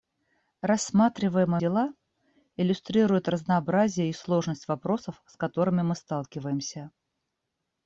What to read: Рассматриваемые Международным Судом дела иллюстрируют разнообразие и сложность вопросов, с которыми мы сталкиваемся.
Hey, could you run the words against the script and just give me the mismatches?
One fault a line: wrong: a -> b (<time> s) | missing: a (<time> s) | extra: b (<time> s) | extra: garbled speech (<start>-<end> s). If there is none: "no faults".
missing: Международным Судом (1.6 s)